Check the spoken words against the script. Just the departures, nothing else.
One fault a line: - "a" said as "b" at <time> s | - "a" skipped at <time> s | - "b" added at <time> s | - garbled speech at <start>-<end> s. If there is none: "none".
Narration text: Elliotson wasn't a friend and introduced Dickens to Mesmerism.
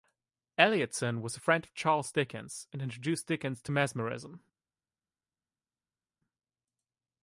- "wasn't" said as "was" at 1.2 s
- "of Charles Dickens" added at 1.6 s